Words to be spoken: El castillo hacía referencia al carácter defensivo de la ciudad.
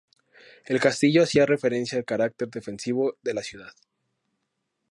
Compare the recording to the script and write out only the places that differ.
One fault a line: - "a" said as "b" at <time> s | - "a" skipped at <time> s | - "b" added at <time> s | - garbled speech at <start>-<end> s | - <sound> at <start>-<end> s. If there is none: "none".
none